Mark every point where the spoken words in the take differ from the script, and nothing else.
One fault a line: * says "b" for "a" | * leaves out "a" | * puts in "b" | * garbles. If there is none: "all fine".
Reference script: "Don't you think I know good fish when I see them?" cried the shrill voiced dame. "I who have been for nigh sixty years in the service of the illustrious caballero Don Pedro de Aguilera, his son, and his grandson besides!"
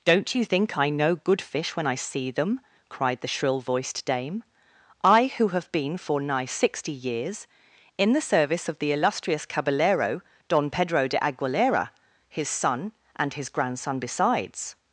all fine